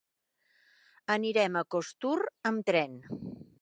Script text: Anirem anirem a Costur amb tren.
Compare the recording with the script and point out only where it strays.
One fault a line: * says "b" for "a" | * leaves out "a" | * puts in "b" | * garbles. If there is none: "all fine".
* leaves out "anirem"